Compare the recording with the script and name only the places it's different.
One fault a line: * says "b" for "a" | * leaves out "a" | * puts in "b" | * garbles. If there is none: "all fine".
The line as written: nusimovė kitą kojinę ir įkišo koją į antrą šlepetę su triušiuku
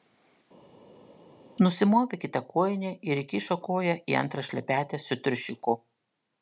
all fine